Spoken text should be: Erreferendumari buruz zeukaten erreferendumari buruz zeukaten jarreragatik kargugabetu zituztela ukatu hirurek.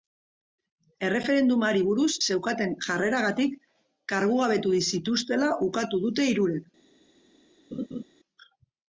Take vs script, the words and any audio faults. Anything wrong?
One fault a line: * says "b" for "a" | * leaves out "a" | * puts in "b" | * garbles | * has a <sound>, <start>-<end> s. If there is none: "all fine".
* leaves out "erreferendumari buruz zeukaten"
* puts in "dute"
* has a laugh, 7.7-8.0 s